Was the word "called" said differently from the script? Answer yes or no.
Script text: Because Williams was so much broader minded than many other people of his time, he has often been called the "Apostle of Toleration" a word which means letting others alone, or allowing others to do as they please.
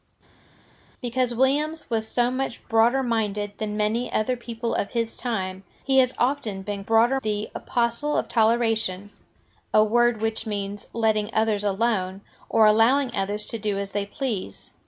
yes